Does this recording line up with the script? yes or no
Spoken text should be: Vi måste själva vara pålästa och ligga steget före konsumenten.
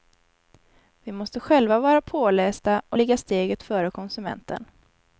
yes